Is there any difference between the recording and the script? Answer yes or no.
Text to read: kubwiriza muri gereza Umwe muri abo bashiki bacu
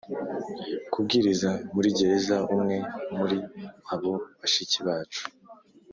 no